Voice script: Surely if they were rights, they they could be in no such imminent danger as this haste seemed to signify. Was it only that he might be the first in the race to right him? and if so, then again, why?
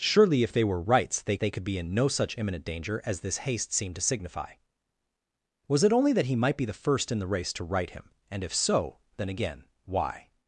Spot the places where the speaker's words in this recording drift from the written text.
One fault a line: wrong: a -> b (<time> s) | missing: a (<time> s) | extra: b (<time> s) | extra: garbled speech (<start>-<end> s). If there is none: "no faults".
no faults